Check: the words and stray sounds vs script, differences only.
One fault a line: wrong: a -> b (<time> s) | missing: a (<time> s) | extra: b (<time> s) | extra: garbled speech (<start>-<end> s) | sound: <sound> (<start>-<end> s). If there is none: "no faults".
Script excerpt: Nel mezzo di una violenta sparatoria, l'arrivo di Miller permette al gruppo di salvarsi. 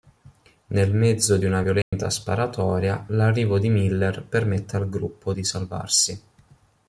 sound: dropout (1.8-1.9 s)